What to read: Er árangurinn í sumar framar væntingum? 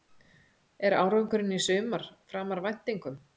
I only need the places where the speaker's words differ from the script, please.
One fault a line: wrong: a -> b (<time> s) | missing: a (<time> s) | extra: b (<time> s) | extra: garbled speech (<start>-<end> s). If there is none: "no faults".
no faults